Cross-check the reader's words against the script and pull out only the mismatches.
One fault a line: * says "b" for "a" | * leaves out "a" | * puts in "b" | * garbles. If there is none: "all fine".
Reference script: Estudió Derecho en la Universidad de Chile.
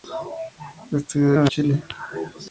* leaves out "Derecho"
* leaves out "Universidad de"